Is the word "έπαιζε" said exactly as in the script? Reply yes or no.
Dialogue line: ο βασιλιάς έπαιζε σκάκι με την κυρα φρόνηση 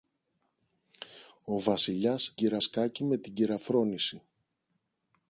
no